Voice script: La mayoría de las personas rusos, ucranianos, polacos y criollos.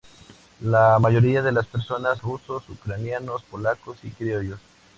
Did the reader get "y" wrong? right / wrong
right